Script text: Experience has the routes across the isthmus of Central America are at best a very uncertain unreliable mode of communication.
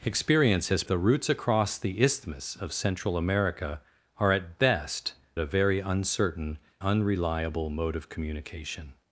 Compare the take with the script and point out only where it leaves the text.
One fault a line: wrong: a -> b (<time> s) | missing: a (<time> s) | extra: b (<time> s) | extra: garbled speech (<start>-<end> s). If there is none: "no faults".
no faults